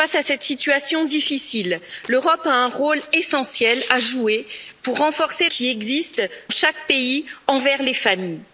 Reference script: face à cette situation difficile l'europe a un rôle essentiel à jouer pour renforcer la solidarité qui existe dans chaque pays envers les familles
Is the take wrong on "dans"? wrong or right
wrong